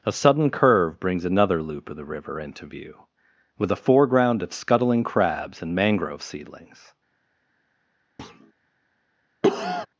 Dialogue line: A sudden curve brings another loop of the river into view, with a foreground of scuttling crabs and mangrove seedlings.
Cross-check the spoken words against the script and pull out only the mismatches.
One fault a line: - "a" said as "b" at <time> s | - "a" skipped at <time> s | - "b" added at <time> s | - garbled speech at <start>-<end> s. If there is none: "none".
none